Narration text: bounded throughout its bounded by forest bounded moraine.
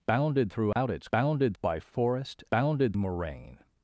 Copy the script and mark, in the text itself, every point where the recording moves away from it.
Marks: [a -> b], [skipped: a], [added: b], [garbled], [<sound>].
bounded throughout [dropout] its bounded by forest bounded moraine.